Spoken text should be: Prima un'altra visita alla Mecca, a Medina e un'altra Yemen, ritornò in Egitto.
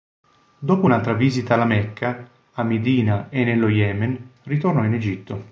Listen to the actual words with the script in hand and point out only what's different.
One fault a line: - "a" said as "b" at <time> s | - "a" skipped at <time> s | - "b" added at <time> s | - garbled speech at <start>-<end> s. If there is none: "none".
- "Prima" said as "Dopo" at 0.6 s
- "un'altra" said as "nello" at 3.4 s